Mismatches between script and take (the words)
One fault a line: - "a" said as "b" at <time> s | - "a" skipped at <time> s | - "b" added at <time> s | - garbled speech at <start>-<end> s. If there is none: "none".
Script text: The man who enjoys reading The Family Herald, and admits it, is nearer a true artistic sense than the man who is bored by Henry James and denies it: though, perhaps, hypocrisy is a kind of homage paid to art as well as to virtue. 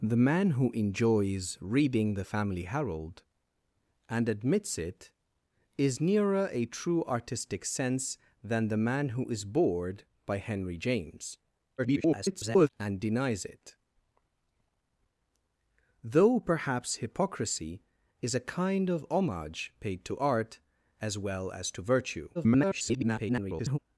- garbled speech at 11.8-12.7 s
- garbled speech at 22.3-23.8 s